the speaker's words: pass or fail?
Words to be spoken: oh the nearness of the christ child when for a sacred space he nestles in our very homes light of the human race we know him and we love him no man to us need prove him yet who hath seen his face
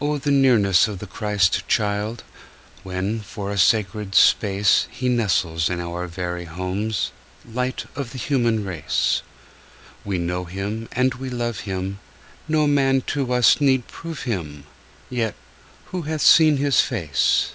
pass